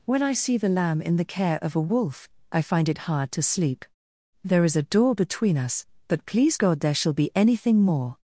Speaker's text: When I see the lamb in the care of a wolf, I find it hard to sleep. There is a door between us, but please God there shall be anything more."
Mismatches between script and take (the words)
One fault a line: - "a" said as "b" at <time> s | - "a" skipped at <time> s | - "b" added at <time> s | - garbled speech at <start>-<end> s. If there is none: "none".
none